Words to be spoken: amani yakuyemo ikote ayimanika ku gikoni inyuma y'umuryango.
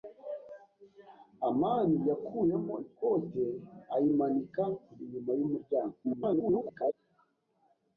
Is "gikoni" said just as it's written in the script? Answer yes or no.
no